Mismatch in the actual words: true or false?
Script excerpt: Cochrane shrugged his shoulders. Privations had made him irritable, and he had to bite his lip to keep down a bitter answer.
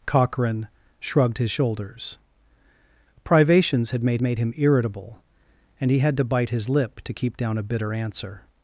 true